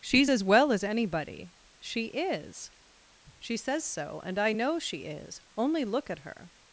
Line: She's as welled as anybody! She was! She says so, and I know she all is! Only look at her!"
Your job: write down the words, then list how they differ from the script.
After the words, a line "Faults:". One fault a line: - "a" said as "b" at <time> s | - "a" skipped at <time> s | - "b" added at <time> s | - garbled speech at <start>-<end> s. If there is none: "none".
She's as well as anybody! She is! She says so, and I know she is! Only look at her!"
Faults:
- "welled" said as "well" at 0.4 s
- "was" said as "is" at 2.1 s
- "all" skipped at 5.0 s